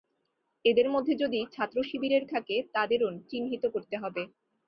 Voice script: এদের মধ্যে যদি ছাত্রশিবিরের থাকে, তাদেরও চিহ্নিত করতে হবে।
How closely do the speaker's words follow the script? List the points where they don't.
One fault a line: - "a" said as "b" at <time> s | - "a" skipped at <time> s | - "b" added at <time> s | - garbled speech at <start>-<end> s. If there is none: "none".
none